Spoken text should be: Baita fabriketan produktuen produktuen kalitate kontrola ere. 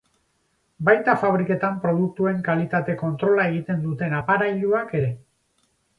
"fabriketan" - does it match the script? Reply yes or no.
yes